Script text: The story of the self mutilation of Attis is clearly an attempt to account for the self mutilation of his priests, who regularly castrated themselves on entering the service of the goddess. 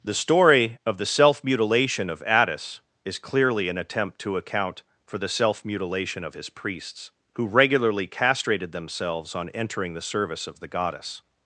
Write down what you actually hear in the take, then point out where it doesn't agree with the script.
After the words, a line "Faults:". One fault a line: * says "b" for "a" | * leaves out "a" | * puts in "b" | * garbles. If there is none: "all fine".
The story of the self mutilation of Attis is clearly an attempt to account for the self mutilation of his priests, who regularly castrated themselves on entering the service of the goddess.
Faults:
all fine